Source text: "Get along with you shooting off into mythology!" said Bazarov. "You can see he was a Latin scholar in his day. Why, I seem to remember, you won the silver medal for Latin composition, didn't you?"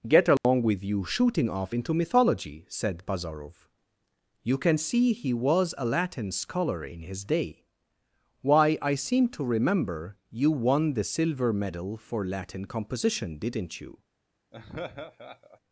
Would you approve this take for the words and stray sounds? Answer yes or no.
no